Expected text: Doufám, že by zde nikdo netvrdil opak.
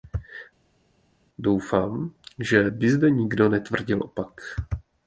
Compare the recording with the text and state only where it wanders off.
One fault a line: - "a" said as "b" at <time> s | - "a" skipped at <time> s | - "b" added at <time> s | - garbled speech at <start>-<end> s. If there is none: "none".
none